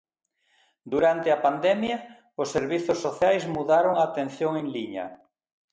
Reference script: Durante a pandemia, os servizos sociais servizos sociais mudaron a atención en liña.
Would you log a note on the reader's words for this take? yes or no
yes